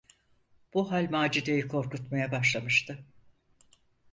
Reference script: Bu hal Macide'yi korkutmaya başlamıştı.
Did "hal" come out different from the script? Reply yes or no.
no